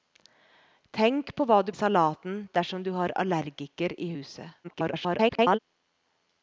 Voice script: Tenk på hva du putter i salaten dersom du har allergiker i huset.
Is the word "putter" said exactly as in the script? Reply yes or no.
no